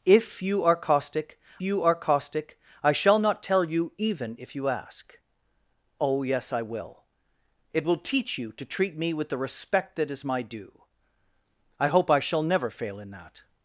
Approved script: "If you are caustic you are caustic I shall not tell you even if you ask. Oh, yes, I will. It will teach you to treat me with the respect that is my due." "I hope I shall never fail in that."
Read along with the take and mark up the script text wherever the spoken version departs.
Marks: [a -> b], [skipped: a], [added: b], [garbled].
"If you are caustic you are caustic I shall not tell you even if you ask. Oh, yes, I will. It will teach you to treat me with the respect that is my due." "I hope I shall never fail in that."